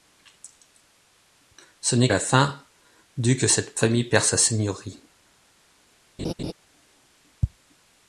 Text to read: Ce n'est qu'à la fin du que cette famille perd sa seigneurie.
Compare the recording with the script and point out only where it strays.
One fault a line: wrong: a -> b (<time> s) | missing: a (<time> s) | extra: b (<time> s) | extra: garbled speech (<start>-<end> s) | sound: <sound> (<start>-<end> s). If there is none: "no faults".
missing: qu'à (2.1 s)
sound: laugh (6.2-6.5 s)